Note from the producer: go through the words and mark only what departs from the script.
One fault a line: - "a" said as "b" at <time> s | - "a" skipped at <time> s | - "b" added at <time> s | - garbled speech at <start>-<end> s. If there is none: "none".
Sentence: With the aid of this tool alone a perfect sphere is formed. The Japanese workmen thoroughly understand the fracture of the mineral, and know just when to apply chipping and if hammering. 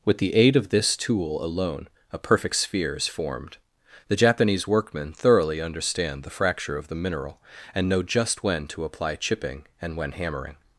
- "if" said as "when" at 10.0 s